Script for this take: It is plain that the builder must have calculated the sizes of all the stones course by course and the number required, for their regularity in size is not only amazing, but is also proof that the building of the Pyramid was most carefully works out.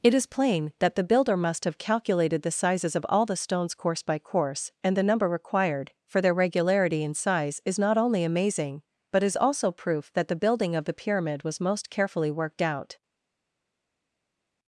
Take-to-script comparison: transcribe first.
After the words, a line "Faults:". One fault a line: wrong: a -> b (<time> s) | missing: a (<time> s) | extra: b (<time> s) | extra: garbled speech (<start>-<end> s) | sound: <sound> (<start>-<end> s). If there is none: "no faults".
It is plain that the builder must have calculated the sizes of all the stones course by course and the number required, for their regularity in size is not only amazing, but is also proof that the building of the Pyramid was most carefully worked out.
Faults:
wrong: works -> worked (12.3 s)